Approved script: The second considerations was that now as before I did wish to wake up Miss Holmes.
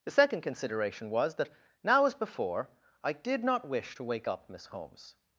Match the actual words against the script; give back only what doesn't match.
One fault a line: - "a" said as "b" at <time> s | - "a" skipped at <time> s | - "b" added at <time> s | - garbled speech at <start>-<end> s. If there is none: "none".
- "considerations" said as "consideration" at 0.4 s
- "not" added at 3.4 s